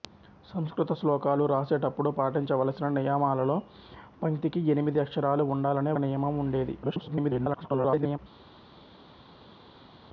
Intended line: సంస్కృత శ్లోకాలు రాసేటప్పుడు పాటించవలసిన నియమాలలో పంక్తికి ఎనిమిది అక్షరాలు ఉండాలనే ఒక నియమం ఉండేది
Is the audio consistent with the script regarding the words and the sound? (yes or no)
no